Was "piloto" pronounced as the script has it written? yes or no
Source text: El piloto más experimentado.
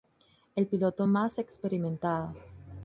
yes